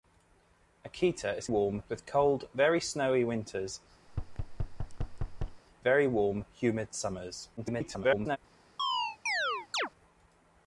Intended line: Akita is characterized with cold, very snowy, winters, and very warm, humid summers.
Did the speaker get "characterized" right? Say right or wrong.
wrong